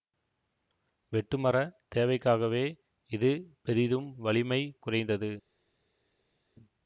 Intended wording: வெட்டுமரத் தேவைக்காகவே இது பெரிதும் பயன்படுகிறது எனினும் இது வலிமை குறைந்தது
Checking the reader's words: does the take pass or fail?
fail